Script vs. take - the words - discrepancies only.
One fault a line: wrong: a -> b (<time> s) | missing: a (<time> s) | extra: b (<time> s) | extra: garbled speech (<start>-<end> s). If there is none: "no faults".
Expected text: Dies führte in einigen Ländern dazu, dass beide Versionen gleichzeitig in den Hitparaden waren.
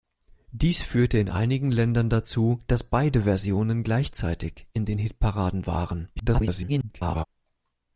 extra: garbled speech (6.2-7.2 s)